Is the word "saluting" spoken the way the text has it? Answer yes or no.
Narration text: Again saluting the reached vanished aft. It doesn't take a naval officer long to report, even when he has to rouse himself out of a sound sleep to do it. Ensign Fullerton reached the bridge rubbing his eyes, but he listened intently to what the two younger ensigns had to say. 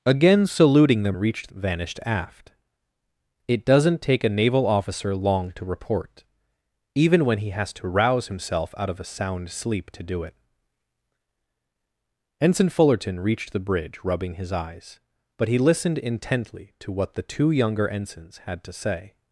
yes